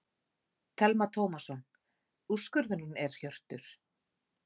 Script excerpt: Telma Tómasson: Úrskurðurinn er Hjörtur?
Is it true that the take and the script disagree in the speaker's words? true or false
false